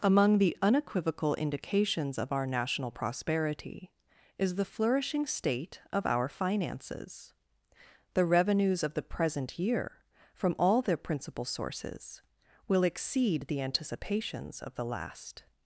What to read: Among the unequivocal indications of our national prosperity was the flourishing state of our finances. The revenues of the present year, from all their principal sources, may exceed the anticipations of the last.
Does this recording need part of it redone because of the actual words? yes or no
yes